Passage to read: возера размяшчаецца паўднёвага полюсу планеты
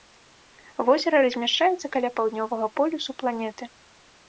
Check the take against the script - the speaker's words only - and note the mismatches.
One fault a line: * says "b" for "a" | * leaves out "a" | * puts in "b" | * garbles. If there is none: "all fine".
* puts in "каля"